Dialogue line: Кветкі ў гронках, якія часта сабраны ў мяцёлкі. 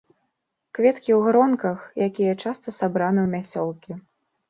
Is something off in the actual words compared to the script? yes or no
no